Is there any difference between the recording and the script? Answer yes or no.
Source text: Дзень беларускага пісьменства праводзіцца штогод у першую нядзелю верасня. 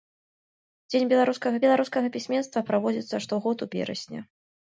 yes